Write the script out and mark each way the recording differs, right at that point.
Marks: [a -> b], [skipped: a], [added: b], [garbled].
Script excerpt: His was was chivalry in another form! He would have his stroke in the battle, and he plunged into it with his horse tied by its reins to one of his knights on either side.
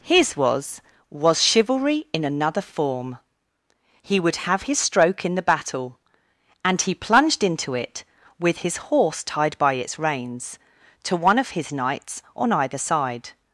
His was was chivalry in another form! He would have his stroke in the battle, and he plunged into it with his horse tied by its reins to one of his knights on either side.